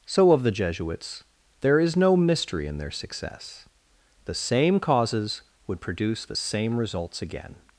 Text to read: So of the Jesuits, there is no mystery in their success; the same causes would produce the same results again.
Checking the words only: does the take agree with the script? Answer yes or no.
yes